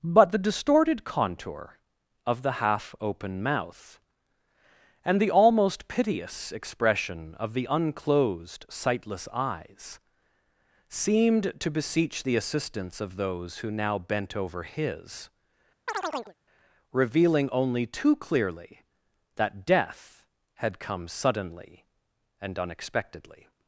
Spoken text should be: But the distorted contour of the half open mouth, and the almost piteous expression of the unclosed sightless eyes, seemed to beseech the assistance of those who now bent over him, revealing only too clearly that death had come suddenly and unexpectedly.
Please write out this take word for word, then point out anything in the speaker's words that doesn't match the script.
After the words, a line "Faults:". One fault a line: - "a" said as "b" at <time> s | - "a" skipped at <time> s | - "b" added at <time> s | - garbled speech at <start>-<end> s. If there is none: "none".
But the distorted contour of the half open mouth, and the almost piteous expression of the unclosed sightless eyes, seemed to beseech the assistance of those who now bent over his, revealing only too clearly that death had come suddenly and unexpectedly.
Faults:
- "him" said as "his" at 14.6 s